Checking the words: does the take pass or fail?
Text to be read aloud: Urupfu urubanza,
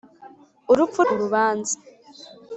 pass